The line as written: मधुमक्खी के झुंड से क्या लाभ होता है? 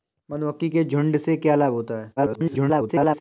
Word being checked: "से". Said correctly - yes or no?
yes